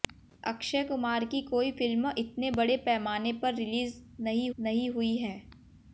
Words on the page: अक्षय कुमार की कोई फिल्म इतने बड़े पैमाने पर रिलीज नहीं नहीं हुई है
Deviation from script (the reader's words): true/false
false